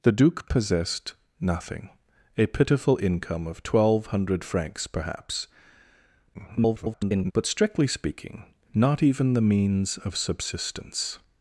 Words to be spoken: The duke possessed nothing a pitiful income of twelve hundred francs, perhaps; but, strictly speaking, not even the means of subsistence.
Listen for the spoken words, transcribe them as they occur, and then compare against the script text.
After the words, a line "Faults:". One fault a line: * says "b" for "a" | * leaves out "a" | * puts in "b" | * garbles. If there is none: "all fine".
The duke possessed nothing a pitiful income of twelve hundred francs, perhaps; [garbled] but, strictly speaking, not even the means of subsistence.
Faults:
* garbles